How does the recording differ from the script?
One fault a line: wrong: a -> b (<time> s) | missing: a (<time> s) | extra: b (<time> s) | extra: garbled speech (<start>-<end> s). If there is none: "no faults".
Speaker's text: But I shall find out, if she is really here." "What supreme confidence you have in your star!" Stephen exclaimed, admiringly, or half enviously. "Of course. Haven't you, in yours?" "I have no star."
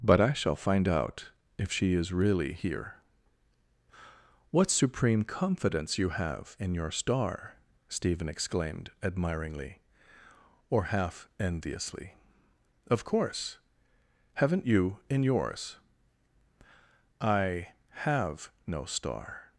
no faults